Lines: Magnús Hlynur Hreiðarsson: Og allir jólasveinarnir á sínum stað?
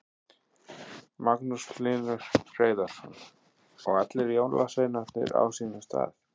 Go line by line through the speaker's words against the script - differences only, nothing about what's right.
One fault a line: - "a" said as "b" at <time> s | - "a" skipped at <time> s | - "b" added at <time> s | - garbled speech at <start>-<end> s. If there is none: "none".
none